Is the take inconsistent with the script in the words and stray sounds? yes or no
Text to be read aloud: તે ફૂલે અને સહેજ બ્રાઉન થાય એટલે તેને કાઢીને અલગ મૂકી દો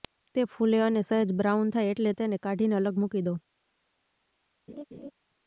yes